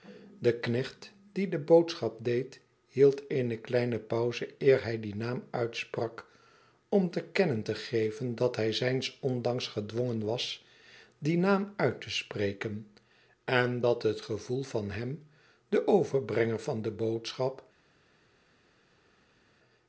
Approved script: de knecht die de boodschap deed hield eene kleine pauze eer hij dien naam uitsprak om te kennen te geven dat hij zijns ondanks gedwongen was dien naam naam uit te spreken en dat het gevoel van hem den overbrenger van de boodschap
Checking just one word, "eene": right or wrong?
right